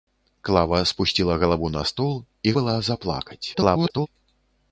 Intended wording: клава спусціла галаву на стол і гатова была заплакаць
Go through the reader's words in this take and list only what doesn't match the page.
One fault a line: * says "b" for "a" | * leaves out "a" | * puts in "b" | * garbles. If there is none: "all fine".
* leaves out "гатова"
* garbles